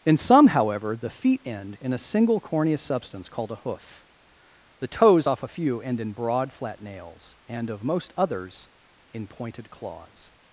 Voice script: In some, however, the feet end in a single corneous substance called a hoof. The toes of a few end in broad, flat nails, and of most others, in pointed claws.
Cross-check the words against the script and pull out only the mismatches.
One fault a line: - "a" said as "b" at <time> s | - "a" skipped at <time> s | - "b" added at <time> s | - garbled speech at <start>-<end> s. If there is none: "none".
- "of" said as "off" at 5.2 s